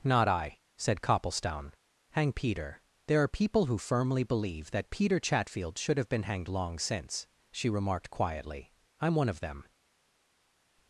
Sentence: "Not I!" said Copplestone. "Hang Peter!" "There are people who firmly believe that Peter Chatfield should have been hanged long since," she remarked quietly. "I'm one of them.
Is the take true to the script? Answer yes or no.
yes